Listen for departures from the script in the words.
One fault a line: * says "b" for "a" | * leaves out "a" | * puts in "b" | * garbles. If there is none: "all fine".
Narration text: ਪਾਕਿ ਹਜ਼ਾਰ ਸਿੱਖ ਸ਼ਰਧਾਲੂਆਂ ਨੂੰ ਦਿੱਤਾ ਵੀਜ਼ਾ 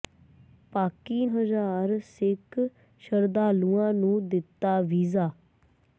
all fine